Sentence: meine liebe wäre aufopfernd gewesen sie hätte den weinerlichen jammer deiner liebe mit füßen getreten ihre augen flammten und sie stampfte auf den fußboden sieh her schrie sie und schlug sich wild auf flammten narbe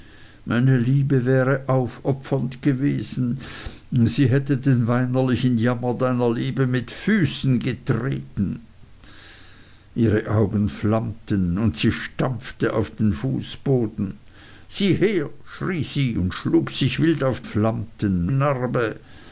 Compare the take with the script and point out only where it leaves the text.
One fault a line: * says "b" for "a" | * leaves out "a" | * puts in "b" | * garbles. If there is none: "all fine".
all fine